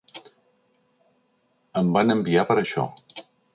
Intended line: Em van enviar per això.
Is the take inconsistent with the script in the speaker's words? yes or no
no